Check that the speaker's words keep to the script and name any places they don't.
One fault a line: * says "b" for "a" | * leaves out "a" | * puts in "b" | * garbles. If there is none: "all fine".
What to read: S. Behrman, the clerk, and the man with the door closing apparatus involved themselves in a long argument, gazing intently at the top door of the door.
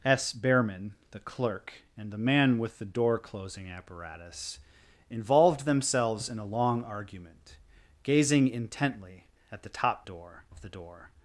all fine